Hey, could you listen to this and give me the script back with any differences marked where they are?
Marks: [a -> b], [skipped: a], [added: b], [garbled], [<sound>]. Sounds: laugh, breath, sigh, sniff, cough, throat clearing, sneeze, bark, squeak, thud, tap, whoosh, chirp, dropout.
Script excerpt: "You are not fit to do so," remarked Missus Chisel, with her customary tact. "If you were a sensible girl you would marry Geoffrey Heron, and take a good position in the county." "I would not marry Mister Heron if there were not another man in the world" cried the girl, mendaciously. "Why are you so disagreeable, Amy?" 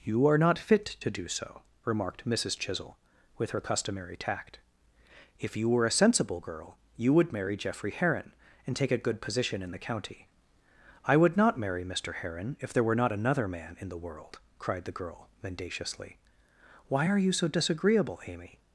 "You are not fit to do so," remarked Missus Chisel, with her customary tact. "If you were a sensible girl you would marry Geoffrey Heron, and take a good position in the county." "I would not marry Mister Heron if there were not another man in the world" cried the girl, mendaciously. "Why are you so disagreeable, Amy?"